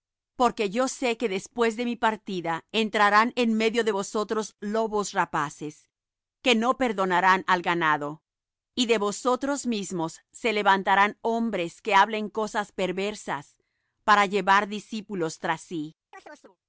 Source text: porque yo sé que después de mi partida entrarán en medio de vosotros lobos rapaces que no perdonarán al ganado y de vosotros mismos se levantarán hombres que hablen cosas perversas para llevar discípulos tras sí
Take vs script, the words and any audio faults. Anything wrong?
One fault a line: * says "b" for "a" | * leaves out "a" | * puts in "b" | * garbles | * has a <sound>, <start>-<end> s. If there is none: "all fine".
* has a chirp, 16.1-16.6 s